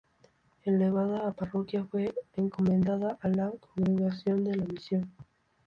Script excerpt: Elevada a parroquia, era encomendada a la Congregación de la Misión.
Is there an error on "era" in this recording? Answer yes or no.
yes